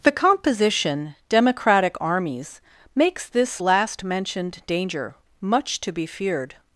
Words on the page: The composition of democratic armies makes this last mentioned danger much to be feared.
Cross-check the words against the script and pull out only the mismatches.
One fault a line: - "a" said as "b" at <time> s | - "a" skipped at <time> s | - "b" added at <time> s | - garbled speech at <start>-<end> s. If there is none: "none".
- "of" skipped at 1.1 s